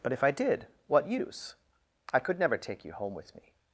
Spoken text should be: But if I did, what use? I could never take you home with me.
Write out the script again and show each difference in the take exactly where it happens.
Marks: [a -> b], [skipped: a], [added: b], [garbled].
But if I did, what use? I could never take you home with me.